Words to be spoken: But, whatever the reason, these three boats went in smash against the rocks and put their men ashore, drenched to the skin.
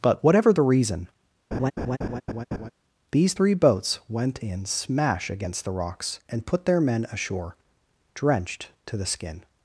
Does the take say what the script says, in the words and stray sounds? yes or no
no